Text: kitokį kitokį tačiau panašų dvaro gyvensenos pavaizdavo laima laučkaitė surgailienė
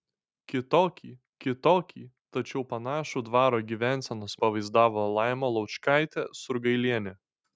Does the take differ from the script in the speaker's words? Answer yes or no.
no